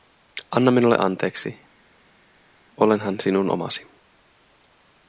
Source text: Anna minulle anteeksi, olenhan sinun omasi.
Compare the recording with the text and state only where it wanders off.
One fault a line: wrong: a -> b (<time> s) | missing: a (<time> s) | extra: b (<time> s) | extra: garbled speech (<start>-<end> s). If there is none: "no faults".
no faults